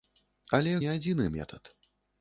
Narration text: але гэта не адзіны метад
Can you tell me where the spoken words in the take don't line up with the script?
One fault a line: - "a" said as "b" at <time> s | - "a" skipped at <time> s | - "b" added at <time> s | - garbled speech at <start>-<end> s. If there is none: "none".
- "гэта" skipped at 0.7 s